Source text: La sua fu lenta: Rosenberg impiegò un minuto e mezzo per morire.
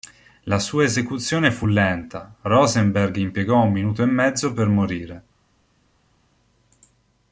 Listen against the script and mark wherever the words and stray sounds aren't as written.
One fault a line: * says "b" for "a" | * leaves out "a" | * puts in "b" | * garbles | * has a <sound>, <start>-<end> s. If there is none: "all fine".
* puts in "esecuzione"